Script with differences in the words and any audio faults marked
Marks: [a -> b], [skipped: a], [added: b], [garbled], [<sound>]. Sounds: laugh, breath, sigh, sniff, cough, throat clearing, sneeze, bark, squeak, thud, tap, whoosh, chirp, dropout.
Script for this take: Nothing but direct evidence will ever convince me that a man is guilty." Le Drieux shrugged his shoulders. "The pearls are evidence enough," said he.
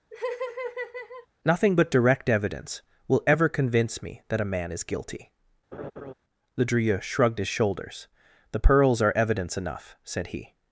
[laugh] Nothing but direct evidence will ever convince me that a man is guilty." [laugh] Le Drieux shrugged his shoulders. "The pearls are evidence enough," said he.